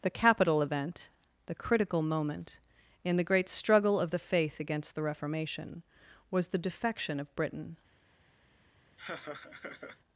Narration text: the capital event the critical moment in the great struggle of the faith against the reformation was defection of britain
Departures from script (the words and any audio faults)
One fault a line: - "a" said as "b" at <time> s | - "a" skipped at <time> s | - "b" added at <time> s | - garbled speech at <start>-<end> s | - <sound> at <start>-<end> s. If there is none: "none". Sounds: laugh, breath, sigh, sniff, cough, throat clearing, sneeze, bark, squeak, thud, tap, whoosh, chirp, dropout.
- "the" added at 6.5 s
- laugh at 9.0-10.0 s